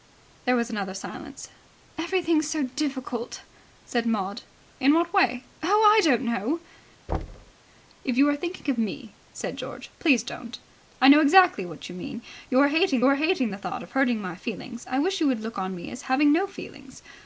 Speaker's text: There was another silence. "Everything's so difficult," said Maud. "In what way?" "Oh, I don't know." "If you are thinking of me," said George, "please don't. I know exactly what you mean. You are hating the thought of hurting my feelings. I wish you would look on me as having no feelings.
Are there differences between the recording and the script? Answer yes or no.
yes